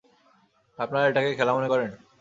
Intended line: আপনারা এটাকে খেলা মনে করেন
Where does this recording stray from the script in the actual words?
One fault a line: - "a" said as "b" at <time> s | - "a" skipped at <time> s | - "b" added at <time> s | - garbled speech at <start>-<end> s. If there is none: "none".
none